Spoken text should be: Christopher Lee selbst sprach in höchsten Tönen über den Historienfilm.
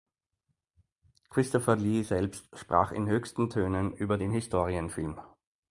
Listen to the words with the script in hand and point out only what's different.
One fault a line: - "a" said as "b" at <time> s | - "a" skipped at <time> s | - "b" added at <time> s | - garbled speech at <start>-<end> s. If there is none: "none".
none